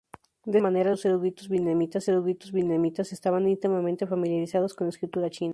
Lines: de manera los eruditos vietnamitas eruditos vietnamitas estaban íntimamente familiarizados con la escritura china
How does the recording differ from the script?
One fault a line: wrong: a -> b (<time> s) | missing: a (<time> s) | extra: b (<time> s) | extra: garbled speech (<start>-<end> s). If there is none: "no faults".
no faults